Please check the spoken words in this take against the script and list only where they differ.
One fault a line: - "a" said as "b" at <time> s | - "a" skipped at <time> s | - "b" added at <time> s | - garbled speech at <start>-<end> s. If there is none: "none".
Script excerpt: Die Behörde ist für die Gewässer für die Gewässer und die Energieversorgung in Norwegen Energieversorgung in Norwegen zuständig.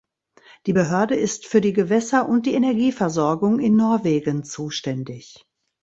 - "für die Gewässer" skipped at 2.3 s
- "Energieversorgung in Norwegen" skipped at 4.4 s